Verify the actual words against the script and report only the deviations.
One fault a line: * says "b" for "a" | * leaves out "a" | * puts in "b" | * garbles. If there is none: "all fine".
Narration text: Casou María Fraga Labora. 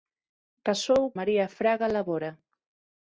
all fine